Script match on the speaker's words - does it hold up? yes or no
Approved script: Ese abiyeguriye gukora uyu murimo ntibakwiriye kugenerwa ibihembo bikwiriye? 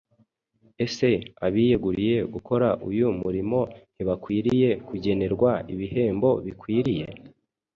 yes